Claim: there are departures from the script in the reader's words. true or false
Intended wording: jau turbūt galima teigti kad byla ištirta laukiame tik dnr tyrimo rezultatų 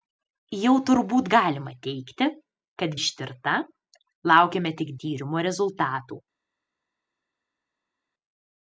true